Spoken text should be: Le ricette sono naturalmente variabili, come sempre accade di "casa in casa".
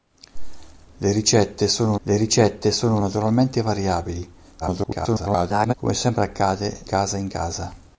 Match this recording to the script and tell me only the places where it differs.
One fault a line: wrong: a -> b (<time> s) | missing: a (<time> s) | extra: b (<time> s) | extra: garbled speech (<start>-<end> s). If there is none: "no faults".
extra: le ricette sono (2.0 s)
extra: garbled speech (4.6-5.7 s)
missing: di (6.9 s)